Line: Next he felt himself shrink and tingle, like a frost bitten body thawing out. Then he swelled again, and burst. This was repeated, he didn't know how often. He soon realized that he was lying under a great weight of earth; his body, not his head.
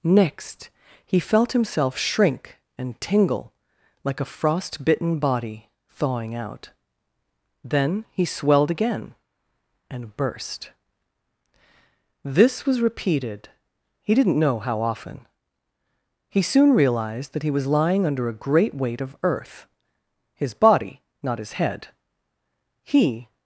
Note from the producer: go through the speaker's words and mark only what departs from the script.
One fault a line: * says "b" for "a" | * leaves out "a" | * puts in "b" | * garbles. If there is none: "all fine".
* puts in "He"